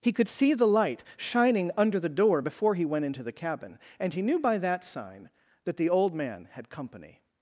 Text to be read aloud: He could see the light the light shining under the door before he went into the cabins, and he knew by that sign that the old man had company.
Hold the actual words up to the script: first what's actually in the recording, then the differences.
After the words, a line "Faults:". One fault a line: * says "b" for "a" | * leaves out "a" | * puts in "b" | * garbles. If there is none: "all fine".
He could see the light shining under the door before he went into the cabin, and he knew by that sign that the old man had company.
Faults:
* leaves out "the light"
* says "cabin" for "cabins"